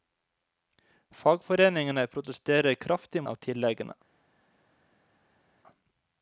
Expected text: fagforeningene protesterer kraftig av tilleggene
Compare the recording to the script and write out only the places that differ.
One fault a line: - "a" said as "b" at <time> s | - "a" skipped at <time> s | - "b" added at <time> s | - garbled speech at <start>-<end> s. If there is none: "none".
none